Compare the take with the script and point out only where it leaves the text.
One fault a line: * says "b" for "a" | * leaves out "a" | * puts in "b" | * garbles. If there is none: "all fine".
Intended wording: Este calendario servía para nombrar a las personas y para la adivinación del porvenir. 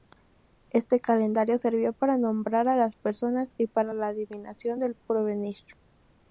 all fine